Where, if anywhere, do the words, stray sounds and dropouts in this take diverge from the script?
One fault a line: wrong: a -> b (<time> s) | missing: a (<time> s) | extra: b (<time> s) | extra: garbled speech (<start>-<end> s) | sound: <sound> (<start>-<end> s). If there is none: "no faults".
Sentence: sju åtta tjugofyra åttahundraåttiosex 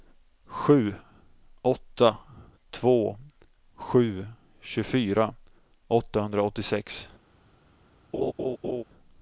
extra: två sju (2.7 s)
sound: laugh (8.1-8.8 s)